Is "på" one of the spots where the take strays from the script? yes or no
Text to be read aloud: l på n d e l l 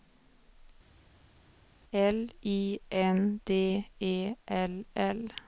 yes